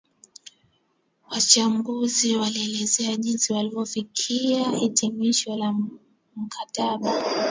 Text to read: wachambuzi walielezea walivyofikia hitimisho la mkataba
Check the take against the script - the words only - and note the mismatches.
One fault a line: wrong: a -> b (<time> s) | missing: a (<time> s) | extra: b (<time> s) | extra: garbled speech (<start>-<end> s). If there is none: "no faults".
extra: jinsi (3.1 s)